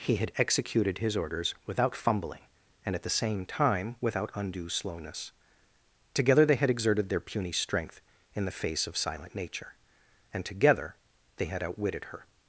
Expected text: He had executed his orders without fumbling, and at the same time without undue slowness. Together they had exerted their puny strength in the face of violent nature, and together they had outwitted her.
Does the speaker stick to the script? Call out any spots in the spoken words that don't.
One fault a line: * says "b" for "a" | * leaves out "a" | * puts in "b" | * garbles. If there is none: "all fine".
* says "silent" for "violent"